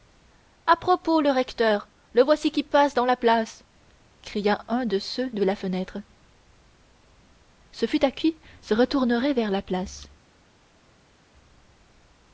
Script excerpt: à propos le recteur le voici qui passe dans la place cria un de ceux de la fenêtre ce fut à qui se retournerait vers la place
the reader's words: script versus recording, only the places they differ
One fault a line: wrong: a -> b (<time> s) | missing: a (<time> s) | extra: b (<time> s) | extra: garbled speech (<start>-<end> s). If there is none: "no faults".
no faults